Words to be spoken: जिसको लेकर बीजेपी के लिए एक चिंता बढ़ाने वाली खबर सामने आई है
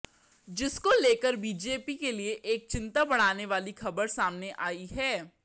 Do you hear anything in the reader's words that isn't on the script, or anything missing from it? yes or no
no